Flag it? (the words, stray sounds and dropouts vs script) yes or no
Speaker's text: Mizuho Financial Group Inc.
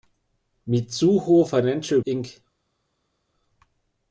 yes